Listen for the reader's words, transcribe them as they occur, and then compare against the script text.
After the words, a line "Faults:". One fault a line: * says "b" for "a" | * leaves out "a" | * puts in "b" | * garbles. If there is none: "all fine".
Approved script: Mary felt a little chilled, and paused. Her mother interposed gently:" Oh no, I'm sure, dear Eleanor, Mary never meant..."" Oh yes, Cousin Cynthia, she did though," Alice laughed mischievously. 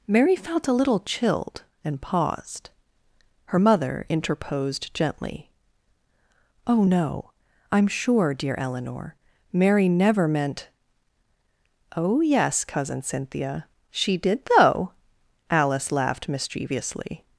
Mary felt a little chilled, and paused. Her mother interposed gently:" Oh no, I'm sure, dear Eleanor, Mary never meant..."" Oh yes, Cousin Cynthia, she did though," Alice laughed mischievously.
Faults:
all fine